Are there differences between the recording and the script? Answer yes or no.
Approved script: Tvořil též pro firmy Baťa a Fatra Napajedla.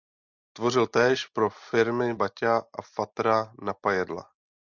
no